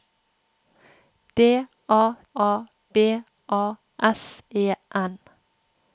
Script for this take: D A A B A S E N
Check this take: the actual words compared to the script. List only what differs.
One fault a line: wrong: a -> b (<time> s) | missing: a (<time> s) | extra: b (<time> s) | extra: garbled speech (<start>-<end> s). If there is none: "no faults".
no faults